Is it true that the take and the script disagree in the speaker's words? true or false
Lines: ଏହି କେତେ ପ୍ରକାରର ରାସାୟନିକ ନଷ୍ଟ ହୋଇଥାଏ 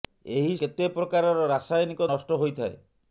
false